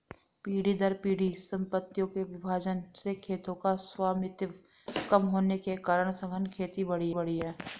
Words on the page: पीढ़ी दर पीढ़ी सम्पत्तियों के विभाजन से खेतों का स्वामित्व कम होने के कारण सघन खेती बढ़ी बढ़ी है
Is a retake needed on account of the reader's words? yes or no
no